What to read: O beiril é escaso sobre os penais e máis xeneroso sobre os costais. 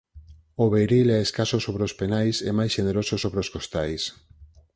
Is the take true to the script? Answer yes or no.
yes